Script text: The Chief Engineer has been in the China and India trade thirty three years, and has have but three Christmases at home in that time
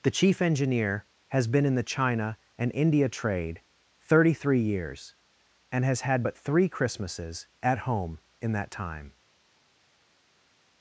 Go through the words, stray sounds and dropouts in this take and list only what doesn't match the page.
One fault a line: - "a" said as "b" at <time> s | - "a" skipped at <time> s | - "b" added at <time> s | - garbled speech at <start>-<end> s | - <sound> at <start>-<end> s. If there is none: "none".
- "have" said as "had" at 6.0 s